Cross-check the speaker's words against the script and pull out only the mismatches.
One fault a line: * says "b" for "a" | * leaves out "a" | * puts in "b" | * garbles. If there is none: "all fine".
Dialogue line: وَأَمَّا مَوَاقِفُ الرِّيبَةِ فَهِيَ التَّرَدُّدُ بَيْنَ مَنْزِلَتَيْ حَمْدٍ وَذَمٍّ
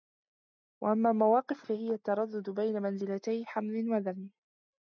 * leaves out "الرِّيبَةِ"